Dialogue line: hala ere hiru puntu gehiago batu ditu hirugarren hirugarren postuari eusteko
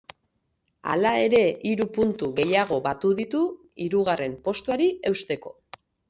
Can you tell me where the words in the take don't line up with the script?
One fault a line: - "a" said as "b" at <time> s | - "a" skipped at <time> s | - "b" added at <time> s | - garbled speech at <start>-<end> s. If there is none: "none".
- "hirugarren" skipped at 4.4 s